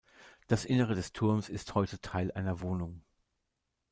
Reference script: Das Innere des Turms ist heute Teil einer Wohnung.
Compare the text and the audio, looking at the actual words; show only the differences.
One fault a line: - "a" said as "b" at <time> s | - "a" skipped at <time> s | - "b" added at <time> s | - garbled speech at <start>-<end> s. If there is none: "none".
none